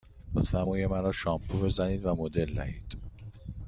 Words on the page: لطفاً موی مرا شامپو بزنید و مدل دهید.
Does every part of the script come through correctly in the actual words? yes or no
yes